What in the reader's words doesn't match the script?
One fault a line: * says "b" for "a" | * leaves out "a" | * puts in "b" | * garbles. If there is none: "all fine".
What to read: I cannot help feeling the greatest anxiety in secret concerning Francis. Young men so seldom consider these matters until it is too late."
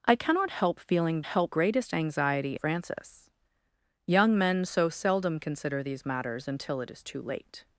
* says "help" for "the"
* leaves out "in secret concerning"